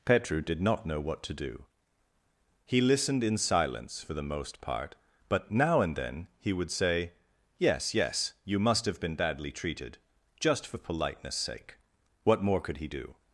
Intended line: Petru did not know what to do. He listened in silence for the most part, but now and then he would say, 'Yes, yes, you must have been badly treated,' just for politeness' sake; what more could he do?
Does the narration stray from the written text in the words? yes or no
no